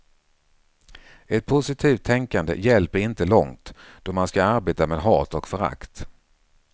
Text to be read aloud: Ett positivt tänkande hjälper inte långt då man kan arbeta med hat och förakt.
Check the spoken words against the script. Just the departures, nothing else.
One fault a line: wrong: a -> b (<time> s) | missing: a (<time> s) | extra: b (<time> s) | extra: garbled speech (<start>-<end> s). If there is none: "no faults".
wrong: kan -> ska (4.3 s)